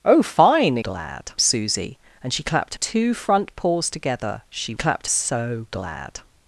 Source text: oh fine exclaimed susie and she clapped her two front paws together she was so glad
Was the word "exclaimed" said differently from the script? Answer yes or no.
yes